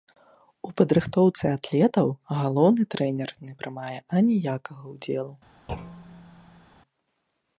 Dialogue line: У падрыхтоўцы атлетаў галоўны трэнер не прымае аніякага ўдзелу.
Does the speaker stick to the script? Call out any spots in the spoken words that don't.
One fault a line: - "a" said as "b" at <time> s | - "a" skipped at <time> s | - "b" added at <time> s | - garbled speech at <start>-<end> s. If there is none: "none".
none